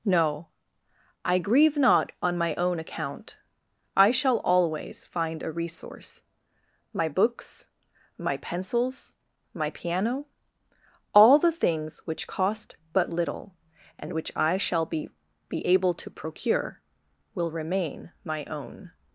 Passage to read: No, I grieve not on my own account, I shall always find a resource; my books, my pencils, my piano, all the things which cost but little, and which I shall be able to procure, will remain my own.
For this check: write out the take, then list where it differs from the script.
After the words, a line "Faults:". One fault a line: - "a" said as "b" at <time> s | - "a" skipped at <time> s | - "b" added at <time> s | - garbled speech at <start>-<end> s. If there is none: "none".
No, I grieve not on my own account, I shall always find a resource; my books, my pencils, my piano, all the things which cost but little, and which I shall be be able to procure, will remain my own.
Faults:
- "be" added at 15.5 s